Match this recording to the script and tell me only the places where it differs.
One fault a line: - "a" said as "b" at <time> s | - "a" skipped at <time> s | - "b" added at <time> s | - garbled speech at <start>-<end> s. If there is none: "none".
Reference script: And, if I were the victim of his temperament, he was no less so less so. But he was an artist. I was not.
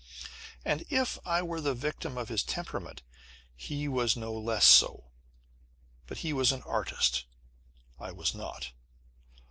- "less so" skipped at 5.1 s